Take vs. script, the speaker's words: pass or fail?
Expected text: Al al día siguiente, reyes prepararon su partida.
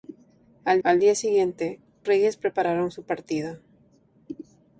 pass